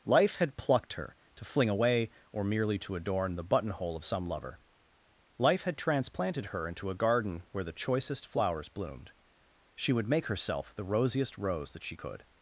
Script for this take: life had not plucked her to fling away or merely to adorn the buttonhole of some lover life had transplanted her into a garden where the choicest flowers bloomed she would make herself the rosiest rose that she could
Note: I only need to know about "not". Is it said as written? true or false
false